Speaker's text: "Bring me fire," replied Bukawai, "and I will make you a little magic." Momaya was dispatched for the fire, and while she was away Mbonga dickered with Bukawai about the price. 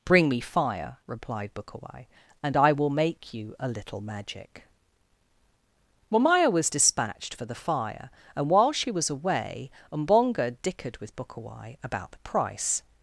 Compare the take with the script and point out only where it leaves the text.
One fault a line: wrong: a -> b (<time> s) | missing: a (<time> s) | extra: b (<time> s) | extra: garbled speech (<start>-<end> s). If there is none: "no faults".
no faults